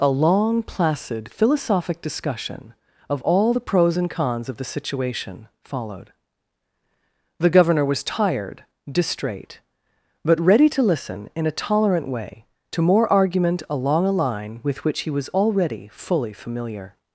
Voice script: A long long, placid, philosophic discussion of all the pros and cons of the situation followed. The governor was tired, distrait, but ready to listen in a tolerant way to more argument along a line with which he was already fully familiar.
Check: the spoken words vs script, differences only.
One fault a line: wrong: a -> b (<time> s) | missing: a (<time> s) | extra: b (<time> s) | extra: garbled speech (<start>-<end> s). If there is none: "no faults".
missing: long (0.6 s)